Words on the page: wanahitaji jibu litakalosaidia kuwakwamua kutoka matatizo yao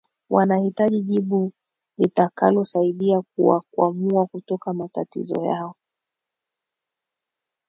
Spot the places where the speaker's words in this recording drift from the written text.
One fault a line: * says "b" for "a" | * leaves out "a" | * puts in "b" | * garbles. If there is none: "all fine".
all fine